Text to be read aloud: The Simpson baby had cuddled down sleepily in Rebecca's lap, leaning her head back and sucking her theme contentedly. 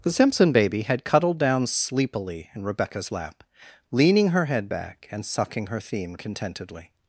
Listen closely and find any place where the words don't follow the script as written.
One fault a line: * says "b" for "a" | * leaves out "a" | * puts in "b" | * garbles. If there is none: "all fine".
all fine